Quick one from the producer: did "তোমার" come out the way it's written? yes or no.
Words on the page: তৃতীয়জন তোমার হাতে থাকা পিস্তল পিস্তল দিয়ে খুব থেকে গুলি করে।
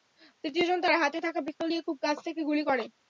no